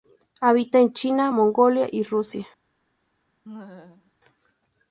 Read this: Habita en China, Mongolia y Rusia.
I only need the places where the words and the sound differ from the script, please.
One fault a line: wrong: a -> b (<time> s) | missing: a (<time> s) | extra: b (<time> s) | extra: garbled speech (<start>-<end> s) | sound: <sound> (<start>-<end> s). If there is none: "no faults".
sound: laugh (3.4-4.1 s)